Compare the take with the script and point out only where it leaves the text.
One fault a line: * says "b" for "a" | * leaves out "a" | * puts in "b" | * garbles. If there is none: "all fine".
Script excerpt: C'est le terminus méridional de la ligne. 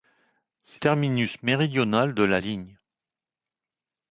* leaves out "le"